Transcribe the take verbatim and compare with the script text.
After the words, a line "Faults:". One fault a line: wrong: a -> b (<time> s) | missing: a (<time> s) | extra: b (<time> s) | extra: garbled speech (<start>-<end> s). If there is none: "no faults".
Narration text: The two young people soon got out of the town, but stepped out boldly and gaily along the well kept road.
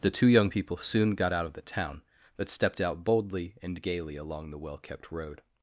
The two young people soon got out of the town, but stepped out boldly and gaily along the well kept road.
Faults:
no faults